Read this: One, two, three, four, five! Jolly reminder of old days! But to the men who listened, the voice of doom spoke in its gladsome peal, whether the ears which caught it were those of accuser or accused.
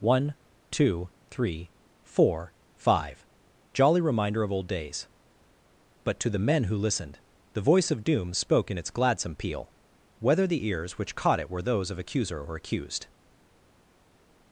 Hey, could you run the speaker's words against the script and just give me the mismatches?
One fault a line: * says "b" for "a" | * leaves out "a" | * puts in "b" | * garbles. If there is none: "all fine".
all fine